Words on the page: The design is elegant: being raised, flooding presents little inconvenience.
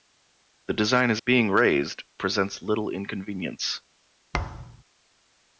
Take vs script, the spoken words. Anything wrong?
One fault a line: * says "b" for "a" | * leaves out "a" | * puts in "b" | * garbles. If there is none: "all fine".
* leaves out "elegant"
* leaves out "flooding"